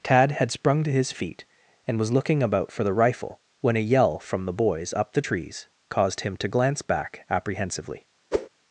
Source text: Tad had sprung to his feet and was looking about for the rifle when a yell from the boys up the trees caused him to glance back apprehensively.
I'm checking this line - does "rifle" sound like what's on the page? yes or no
yes